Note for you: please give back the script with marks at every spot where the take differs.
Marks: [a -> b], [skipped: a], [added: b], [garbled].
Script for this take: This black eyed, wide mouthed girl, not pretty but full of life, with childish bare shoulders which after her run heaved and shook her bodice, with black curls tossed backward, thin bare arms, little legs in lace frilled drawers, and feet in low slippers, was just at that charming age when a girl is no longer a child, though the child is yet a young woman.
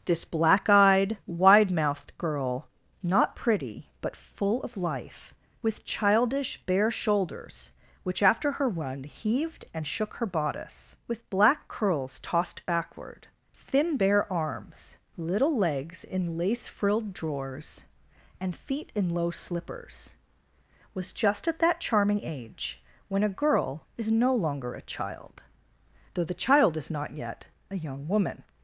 This black eyed, wide mouthed girl, not pretty but full of life, with childish bare shoulders which after her run heaved and shook her bodice, with black curls tossed backward, thin bare arms, little legs in lace frilled drawers, and feet in low slippers, was just at that charming age when a girl is no longer a child, though the child is [added: not] yet a young woman.